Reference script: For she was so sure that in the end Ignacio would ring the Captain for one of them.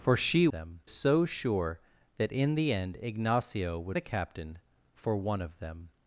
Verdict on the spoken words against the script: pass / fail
fail